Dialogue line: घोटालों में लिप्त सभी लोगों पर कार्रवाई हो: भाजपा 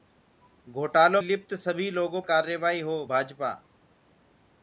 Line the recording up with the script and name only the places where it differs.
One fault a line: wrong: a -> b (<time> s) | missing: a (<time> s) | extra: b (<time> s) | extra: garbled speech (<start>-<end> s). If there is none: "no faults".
missing: में (1.2 s)
missing: पर (2.2 s)